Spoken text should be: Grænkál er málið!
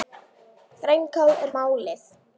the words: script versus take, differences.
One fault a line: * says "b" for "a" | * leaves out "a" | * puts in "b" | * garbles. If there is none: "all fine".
all fine